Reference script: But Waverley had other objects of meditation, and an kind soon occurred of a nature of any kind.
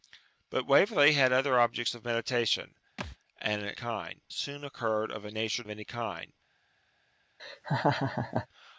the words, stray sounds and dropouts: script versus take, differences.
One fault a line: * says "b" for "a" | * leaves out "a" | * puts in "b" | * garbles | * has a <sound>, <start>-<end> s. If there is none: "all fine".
* has a thud, 3.0-3.2 s
* has a laugh, 7.4-8.5 s